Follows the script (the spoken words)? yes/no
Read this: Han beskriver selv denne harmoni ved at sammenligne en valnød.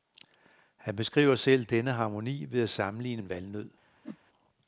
yes